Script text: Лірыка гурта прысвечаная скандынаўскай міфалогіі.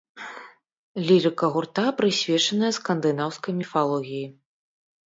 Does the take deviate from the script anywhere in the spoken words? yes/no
no